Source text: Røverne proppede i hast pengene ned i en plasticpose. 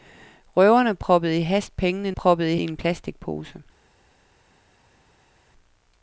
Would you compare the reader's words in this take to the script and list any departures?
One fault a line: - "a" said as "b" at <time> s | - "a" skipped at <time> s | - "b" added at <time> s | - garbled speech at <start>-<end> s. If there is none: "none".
- "ned" said as "proppede" at 2.1 s